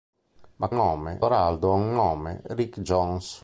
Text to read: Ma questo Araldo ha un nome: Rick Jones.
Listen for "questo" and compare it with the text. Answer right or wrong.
wrong